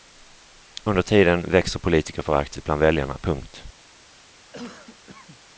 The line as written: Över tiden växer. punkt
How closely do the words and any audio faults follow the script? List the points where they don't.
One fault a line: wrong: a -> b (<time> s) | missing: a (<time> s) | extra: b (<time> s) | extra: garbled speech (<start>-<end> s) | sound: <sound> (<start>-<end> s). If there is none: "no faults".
wrong: Över -> Under (0.8 s)
extra: politikerföraktet bland väljarna (1.8 s)
sound: cough (4.5-5.4 s)